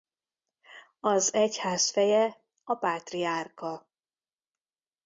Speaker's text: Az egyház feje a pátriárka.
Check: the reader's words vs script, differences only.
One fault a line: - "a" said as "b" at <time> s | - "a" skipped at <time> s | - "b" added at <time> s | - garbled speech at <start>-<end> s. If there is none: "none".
none